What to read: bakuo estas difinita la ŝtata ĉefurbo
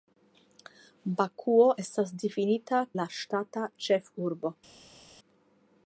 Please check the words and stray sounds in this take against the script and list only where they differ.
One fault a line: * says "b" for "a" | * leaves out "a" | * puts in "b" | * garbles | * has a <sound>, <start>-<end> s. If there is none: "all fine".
all fine